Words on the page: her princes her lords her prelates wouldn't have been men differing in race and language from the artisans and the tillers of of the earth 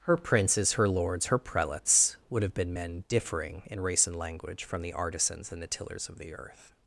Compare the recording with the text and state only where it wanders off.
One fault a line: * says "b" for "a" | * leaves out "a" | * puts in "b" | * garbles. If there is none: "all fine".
* says "would" for "wouldn't"
* leaves out "of"